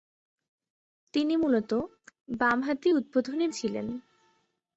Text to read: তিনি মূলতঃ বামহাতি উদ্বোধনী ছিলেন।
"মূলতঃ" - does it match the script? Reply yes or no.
yes